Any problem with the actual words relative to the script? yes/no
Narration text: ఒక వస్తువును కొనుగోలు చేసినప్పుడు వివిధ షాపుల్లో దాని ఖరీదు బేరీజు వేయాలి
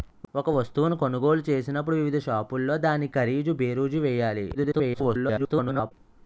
yes